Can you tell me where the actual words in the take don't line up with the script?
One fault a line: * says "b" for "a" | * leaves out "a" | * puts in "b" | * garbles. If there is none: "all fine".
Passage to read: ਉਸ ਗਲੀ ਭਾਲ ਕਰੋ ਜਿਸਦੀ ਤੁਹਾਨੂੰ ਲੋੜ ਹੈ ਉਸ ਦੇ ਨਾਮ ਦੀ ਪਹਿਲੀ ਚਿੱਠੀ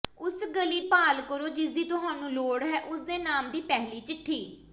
all fine